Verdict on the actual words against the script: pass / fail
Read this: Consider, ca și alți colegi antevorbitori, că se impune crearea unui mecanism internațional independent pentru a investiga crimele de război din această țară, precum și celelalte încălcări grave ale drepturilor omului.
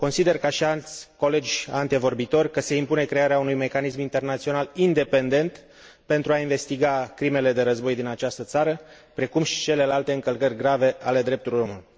pass